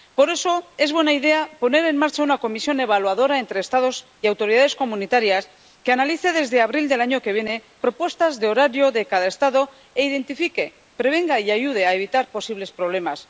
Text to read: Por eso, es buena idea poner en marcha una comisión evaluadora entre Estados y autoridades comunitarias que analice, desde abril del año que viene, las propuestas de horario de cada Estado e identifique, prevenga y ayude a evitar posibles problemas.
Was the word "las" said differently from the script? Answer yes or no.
yes